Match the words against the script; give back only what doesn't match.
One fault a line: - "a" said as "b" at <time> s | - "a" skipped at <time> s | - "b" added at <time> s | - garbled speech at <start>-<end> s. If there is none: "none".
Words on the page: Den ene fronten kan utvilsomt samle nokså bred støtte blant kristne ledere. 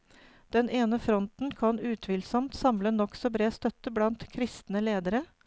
none